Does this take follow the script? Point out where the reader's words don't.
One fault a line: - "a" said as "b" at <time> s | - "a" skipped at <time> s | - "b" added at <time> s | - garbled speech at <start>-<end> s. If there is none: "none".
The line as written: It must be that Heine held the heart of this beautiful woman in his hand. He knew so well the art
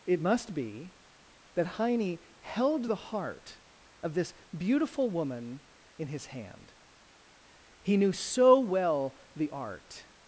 none